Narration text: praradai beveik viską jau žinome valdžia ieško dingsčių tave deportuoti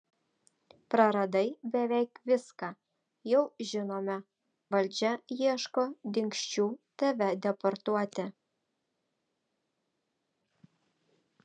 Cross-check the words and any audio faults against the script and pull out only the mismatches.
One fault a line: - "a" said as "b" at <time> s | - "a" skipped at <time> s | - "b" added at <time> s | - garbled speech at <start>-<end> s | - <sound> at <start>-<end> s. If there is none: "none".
none